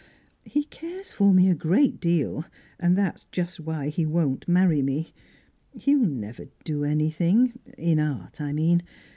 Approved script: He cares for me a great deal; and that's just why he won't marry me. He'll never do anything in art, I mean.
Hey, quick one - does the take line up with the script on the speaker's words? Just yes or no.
yes